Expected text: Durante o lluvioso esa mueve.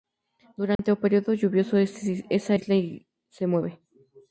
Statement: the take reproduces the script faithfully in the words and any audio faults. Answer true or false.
false